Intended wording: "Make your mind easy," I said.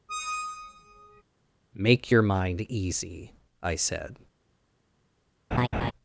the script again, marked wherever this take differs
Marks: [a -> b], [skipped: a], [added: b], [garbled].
"Make your mind easy," I said.